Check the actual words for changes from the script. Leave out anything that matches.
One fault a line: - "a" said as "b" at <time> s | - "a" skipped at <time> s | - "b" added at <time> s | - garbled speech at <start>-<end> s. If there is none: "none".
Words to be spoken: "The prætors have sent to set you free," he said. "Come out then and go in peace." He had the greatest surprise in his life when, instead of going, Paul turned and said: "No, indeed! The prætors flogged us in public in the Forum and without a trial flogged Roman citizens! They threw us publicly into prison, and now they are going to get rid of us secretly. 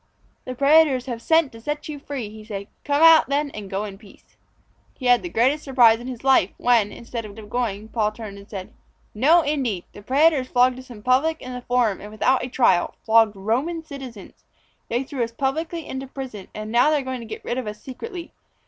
- "of" added at 7.4 s